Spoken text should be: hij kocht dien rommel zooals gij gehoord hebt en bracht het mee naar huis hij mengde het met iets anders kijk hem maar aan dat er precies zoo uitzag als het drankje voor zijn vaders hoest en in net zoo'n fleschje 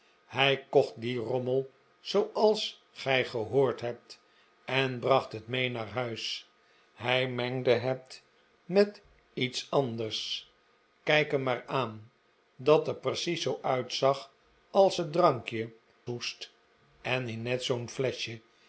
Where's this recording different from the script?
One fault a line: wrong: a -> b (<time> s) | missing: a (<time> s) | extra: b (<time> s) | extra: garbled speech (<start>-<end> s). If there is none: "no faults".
missing: voor zijn vaders (15.7 s)